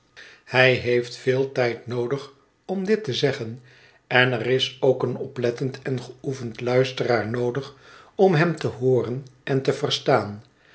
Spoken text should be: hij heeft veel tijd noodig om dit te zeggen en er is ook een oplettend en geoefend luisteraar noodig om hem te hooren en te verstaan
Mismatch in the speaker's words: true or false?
false